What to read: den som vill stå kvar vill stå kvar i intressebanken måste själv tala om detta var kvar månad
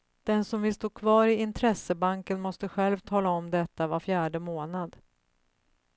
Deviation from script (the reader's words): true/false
true